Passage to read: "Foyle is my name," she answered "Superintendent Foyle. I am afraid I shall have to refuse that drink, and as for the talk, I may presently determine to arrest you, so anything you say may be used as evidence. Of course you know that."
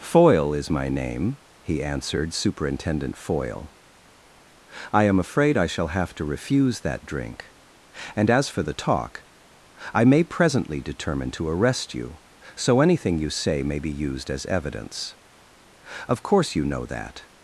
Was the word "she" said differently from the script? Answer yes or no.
yes